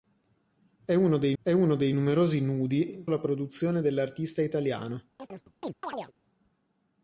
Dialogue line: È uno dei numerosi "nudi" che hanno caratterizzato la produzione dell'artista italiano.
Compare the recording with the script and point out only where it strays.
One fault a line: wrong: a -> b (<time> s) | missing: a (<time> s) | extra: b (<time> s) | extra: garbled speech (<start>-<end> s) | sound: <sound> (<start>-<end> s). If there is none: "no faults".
wrong: numerosi nudi che hanno caratterizzato -> è uno dei numerosi nudi (1.4 s)
sound: chirp (5.2-6.1 s)